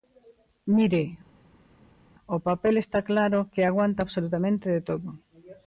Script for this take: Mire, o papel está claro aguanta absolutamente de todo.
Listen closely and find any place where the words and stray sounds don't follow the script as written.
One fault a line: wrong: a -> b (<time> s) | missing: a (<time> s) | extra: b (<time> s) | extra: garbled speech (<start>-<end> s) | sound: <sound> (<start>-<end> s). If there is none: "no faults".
extra: que (3.5 s)